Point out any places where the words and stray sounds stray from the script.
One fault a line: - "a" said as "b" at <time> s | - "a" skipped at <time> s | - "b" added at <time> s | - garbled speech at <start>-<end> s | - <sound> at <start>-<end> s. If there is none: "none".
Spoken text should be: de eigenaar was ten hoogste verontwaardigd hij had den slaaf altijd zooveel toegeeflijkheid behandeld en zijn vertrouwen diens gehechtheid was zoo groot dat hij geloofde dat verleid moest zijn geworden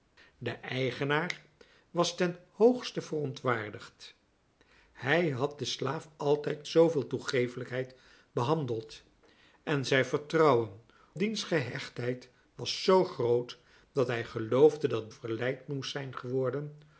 none